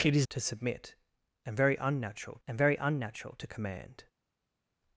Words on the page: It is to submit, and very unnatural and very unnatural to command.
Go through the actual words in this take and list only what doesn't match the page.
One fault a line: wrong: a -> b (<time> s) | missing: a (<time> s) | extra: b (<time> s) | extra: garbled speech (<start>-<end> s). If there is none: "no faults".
no faults